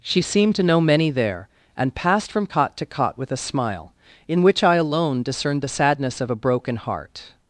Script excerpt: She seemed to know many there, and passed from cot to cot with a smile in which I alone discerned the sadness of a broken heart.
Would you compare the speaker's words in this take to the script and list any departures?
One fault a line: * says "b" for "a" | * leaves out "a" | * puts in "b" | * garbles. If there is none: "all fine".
all fine